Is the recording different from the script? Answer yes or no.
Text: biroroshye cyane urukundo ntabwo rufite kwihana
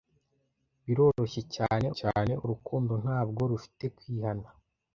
yes